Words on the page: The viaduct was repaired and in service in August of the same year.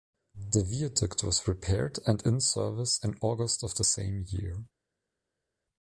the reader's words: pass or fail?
pass